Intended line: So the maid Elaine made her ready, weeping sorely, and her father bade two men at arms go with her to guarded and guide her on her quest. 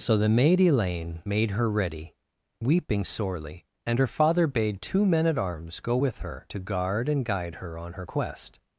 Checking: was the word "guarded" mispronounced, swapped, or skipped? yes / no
yes